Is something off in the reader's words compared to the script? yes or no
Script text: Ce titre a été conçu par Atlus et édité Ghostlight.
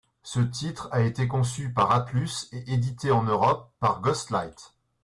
yes